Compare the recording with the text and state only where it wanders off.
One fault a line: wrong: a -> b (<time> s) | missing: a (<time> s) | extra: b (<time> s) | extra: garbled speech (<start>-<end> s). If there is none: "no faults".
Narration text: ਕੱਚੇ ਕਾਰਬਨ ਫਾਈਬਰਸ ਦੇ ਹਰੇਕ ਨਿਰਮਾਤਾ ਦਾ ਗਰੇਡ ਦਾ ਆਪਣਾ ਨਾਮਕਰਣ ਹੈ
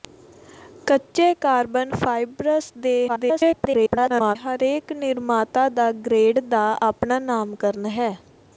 extra: garbled speech (3.1-4.4 s)